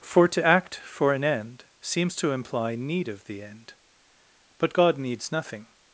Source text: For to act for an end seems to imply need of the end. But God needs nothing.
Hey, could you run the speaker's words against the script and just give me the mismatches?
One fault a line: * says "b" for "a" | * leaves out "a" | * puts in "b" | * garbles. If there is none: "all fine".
all fine